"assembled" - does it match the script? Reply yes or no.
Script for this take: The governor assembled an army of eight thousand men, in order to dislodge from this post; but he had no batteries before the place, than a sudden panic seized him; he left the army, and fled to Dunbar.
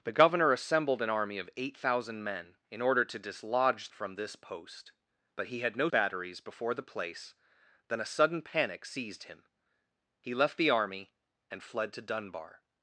yes